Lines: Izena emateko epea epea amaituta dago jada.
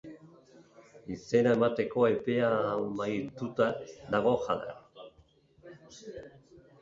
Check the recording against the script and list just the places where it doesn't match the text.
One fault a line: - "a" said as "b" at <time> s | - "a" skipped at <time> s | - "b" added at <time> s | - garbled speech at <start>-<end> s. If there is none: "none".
- "epea" skipped at 2.5 s